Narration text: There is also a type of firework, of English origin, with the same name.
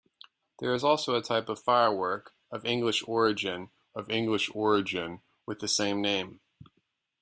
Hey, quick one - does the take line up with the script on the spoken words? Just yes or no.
no